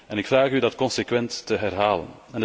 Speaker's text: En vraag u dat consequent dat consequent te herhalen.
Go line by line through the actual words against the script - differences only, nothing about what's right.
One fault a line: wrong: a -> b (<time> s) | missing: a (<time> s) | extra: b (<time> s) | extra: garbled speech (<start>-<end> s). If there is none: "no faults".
extra: ik (0.2 s)
missing: dat consequent (1.4 s)